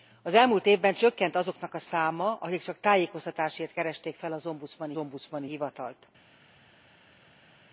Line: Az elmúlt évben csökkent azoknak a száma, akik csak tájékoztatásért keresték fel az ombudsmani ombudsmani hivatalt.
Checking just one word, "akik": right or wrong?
right